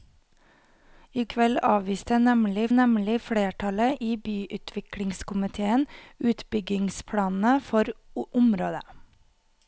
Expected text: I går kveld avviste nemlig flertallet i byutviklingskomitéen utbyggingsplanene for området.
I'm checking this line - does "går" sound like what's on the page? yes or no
no